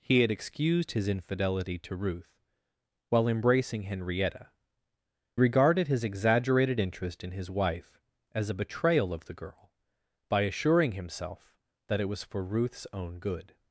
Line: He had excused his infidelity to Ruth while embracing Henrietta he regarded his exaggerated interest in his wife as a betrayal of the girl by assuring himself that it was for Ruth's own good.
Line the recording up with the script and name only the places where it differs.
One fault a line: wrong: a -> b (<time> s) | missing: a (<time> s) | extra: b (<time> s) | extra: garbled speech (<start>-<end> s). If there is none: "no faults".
missing: he (4.5 s)